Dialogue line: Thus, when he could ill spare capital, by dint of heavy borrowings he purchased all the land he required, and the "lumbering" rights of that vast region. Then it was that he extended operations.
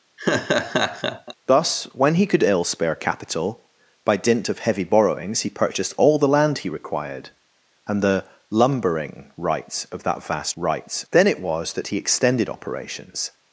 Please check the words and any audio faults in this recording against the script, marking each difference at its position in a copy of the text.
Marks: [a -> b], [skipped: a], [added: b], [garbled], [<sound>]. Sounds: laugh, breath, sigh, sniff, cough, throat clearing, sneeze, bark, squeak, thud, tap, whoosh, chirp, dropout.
[laugh] Thus, when he could ill spare capital, by dint of heavy borrowings he purchased all the land he required, and the "lumbering" rights of that vast [region. -> rights] Then it was that he extended operations.